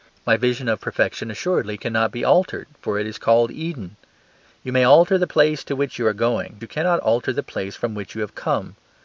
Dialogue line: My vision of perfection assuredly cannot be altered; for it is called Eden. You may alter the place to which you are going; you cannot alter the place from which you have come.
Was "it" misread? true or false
false